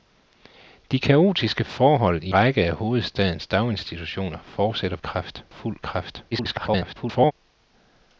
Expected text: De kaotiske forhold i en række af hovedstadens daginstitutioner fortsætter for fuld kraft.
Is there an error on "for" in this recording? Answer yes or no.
yes